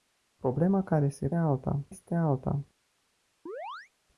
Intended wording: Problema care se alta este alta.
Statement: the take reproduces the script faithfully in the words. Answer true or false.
true